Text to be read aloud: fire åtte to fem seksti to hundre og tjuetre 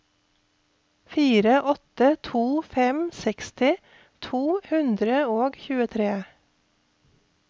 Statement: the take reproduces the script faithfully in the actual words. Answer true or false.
true